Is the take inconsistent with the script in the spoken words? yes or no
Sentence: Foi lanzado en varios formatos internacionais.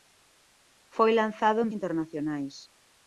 yes